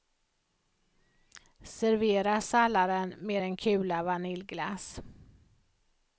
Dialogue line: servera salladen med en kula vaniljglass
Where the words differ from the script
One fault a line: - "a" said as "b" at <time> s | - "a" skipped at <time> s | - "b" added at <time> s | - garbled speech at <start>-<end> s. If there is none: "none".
none